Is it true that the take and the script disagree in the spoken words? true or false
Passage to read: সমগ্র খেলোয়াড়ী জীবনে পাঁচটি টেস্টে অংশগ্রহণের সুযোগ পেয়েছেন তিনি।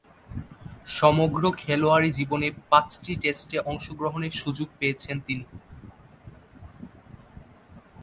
false